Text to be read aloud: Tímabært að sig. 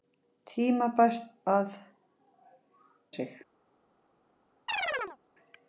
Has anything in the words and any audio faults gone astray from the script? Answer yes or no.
yes